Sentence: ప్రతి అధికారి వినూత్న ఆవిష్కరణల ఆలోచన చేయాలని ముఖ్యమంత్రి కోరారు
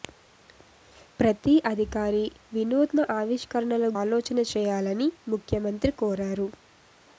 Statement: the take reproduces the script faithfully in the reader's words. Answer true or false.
true